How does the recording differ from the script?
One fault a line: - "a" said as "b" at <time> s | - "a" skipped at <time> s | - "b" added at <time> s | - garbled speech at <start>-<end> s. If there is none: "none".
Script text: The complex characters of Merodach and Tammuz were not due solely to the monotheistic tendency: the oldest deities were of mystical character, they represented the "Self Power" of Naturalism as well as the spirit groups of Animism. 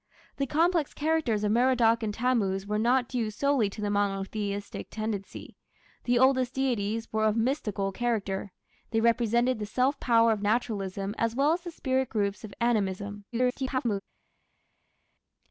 - garbled speech at 13.3-14.0 s